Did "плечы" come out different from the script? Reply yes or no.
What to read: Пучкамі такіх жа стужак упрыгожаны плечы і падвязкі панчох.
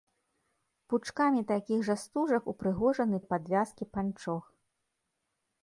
yes